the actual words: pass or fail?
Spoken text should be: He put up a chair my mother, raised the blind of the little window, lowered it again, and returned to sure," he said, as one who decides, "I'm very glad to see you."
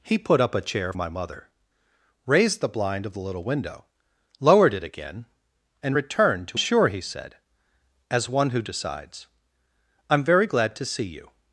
pass